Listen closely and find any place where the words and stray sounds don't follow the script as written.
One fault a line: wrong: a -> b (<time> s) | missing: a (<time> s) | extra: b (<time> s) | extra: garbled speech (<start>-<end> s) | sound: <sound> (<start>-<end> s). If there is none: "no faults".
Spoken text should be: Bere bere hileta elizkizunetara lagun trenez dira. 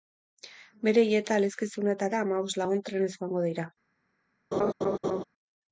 missing: bere (1.0 s)
extra: hamabost (2.2 s)
extra: joango (3.2 s)
sound: laugh (4.5-5.2 s)